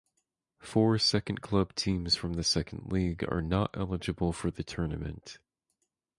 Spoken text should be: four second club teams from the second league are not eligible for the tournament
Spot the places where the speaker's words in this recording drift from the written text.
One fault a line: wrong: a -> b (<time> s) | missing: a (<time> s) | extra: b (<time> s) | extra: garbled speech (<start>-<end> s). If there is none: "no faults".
no faults